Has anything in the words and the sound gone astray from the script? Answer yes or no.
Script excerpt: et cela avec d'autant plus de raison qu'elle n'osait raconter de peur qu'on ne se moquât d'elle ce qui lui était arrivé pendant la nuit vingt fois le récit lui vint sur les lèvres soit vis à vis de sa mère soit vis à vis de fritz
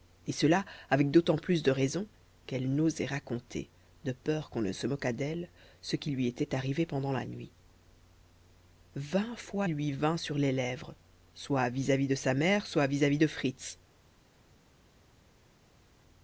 yes